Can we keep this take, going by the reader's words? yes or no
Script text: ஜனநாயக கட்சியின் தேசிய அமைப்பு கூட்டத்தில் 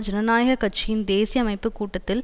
yes